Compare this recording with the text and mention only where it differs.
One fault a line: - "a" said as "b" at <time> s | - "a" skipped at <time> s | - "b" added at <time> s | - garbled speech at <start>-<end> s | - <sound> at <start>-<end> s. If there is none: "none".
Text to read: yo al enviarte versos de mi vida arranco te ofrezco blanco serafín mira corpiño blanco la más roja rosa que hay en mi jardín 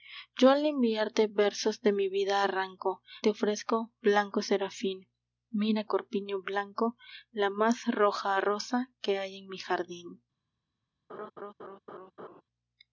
- laugh at 11.1-12.4 s